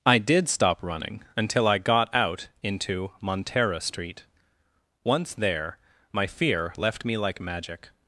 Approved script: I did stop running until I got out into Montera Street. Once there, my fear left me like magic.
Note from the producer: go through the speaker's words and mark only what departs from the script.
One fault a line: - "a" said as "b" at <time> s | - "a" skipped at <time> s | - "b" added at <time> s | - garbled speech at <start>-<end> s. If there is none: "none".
none